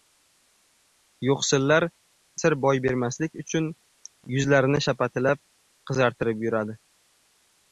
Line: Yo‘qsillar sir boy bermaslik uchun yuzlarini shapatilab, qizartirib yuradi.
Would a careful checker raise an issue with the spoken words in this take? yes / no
no